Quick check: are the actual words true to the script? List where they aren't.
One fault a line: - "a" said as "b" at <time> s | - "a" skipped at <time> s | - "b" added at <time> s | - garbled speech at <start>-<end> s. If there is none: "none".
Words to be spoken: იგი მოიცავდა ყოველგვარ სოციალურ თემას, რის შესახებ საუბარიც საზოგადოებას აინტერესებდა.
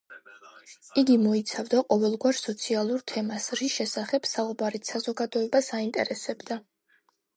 none